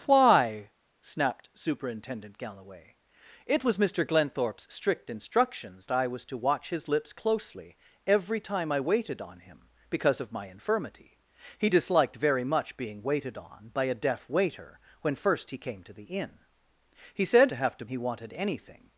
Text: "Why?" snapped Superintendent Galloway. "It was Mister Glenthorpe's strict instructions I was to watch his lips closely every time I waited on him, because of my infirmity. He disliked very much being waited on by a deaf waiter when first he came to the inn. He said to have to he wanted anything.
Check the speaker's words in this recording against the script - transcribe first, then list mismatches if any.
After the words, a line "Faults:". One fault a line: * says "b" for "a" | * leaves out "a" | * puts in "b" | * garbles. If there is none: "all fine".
"Why?" snapped Superintendent Galloway. "It was Mister Glenthorpe's strict instructions I was to watch his lips closely every time I waited on him, because of my infirmity. He disliked very much being waited on by a deaf waiter when first he came to the inn. He said to have to he wanted anything.
Faults:
all fine